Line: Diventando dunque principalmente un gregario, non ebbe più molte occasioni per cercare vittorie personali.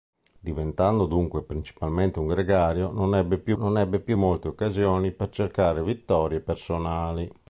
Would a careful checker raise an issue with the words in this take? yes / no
yes